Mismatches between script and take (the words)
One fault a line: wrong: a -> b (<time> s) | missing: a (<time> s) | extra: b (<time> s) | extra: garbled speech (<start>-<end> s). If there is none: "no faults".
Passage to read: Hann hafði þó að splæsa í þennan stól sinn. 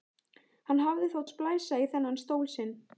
no faults